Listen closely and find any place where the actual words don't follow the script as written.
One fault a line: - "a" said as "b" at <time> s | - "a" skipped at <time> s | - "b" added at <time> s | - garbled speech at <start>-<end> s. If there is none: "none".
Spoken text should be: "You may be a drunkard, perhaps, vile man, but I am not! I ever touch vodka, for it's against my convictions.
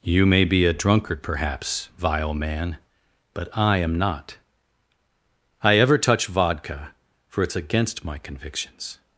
none